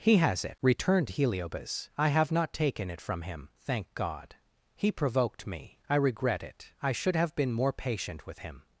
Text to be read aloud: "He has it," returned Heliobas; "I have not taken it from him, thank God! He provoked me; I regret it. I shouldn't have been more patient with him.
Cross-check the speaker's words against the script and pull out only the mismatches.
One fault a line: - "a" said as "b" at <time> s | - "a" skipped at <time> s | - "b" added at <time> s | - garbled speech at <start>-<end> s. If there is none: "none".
- "shouldn't" said as "should" at 6.9 s